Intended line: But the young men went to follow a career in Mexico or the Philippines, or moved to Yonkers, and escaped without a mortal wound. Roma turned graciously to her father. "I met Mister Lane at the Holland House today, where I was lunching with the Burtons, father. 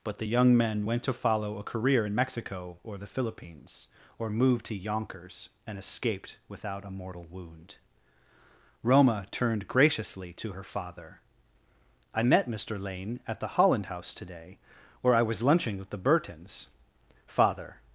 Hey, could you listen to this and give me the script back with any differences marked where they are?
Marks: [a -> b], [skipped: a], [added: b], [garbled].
But the young men went to follow a career in Mexico or the Philippines, or moved to Yonkers, and escaped without a mortal wound. Roma turned graciously to her father. "I met Mister Lane at the Holland House today, where I was lunching with the Burtons, father.